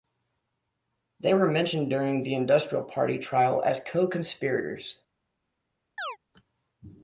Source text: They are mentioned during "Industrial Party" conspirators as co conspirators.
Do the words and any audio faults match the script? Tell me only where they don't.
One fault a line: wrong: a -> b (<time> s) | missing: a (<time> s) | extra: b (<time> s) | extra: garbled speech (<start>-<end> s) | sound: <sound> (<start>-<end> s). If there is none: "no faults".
wrong: are -> were (1.4 s)
extra: the (2.2 s)
wrong: conspirators -> trial (3.2 s)
sound: chirp (6.0-6.2 s)